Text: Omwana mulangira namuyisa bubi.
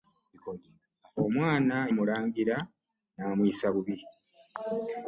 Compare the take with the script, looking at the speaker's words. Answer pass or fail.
pass